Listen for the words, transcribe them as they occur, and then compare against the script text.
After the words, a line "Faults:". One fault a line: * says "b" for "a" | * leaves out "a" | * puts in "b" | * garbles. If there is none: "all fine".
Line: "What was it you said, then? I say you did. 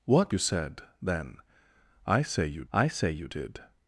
"What you said, then? I say you I say you did.
Faults:
* leaves out "was it"
* puts in "I say you"